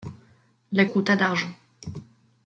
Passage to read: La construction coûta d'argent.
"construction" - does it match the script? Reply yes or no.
no